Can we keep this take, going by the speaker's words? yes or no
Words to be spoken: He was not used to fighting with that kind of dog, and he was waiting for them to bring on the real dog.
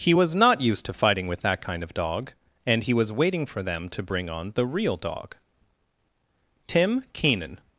no